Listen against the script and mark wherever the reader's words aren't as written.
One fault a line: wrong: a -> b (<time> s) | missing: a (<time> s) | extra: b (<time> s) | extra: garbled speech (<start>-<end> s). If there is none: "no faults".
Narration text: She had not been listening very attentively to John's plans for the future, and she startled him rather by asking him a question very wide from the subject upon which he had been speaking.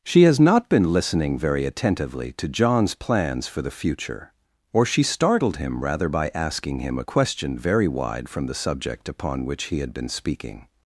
wrong: had -> has (0.2 s)
wrong: and -> or (4.7 s)